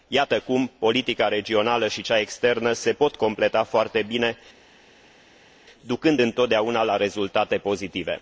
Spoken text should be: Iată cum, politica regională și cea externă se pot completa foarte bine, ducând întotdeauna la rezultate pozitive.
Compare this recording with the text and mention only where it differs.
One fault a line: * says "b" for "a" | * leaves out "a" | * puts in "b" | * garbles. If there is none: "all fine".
all fine